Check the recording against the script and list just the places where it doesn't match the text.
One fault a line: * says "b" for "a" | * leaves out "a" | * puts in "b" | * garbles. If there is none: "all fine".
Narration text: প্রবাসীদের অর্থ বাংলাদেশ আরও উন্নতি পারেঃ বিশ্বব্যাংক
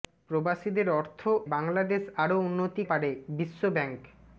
all fine